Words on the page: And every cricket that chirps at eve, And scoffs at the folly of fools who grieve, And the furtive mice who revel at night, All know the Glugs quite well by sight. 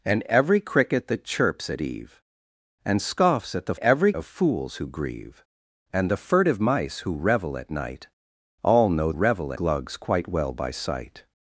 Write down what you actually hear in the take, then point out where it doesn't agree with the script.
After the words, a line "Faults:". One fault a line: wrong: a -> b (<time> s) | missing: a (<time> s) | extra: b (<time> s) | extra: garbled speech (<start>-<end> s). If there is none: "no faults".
And every cricket that chirps at eve, And scoffs at the every of fools who grieve, And the furtive mice who revel at night, All know revel Glugs quite well by sight.
Faults:
wrong: folly -> every (3.8 s)
wrong: the -> revel (9.1 s)